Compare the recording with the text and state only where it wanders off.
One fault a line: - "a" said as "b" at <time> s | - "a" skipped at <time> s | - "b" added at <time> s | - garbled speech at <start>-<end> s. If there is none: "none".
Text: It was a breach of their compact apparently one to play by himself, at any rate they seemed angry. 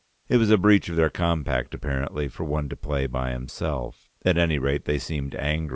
- "for" added at 2.3 s